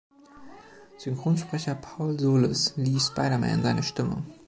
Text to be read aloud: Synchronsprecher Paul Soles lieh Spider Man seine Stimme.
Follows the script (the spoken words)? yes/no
yes